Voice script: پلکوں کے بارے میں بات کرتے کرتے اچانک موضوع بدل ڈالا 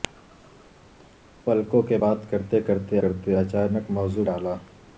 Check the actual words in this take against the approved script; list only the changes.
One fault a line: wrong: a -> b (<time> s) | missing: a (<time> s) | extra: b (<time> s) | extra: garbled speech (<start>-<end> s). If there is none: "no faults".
missing: بارے میں (2.0 s)
extra: کرتے (2.9 s)
missing: بدل (4.2 s)